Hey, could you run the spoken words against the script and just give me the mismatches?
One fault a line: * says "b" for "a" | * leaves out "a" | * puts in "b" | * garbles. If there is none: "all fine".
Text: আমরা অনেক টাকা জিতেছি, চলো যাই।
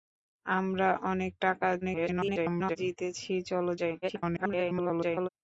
* garbles
* garbles